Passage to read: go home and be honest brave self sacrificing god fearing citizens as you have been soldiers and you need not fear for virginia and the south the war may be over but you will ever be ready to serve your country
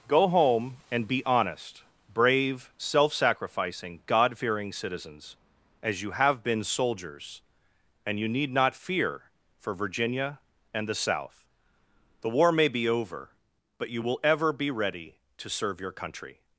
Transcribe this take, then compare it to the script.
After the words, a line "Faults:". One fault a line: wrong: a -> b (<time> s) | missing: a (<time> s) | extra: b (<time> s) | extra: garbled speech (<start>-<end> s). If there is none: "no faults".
go home and be honest brave self sacrificing god fearing citizens as you have been soldiers and you need not fear for virginia and the south the war may be over but you will ever be ready to serve your country
Faults:
no faults